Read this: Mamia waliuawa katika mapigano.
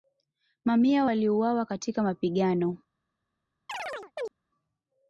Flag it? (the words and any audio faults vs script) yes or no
yes